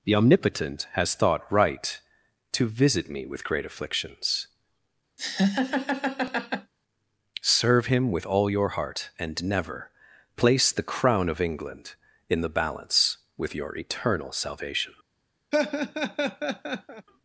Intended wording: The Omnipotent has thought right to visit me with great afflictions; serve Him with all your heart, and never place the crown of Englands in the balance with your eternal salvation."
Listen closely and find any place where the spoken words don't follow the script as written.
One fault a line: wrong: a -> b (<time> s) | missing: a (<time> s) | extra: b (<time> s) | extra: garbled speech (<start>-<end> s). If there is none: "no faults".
wrong: Englands -> England (11.4 s)